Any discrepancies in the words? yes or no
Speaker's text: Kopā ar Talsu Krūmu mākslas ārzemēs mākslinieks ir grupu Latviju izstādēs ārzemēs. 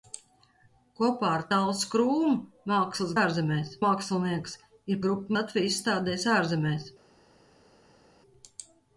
no